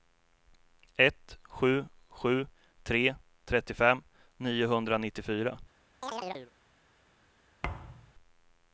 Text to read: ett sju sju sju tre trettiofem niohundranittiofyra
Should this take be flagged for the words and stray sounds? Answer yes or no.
yes